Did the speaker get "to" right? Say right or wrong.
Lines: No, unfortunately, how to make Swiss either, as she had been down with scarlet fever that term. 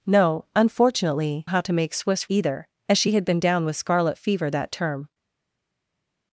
right